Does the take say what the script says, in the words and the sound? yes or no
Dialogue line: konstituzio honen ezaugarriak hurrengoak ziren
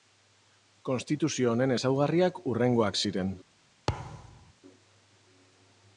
no